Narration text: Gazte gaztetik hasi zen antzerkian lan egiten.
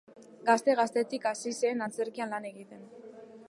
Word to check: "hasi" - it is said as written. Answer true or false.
true